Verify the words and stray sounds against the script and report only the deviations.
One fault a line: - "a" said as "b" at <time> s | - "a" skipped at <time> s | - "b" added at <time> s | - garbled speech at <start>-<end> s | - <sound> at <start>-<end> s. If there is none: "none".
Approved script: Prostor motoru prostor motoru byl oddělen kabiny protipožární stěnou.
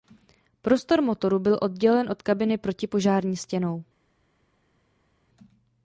- "prostor motoru" skipped at 1.4 s
- "od" added at 2.1 s